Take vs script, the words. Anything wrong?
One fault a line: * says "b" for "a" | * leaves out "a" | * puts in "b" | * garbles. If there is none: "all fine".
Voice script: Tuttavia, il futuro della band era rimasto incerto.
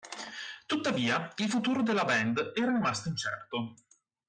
all fine